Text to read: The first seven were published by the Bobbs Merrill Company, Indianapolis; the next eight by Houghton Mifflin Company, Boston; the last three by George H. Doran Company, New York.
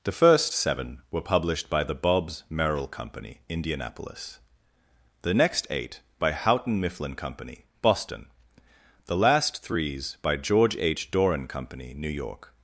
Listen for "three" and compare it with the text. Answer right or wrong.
wrong